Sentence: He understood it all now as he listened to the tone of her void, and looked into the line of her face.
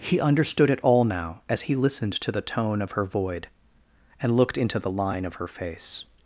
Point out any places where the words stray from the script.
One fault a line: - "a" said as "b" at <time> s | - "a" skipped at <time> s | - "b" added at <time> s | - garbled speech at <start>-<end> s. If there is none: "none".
none